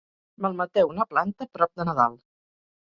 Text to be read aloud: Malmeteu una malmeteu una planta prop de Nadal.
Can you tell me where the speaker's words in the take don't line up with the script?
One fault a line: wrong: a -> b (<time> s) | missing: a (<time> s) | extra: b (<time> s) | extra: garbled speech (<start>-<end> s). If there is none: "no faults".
missing: malmeteu una (1.1 s)